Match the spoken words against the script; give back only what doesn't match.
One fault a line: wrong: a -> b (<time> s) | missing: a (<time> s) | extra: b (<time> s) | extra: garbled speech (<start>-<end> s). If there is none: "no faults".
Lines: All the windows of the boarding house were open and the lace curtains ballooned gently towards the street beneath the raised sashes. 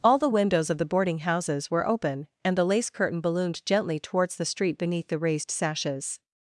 wrong: house -> houses (1.2 s)
wrong: curtains -> curtain (2.9 s)